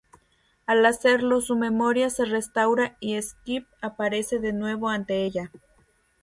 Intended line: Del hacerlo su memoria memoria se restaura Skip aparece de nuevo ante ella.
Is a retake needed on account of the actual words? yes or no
yes